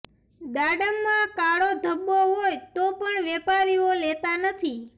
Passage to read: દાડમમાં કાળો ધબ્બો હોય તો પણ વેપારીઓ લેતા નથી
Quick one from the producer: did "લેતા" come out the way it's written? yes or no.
yes